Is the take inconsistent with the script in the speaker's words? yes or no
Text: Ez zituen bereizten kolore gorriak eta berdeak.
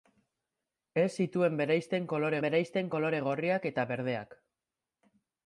yes